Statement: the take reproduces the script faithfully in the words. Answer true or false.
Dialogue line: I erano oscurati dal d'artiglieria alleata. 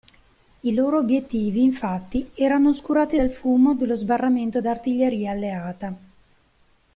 false